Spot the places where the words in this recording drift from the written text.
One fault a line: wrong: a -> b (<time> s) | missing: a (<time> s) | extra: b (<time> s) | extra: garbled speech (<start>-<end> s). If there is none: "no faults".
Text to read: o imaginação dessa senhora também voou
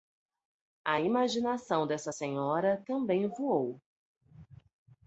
wrong: o -> a (0.8 s)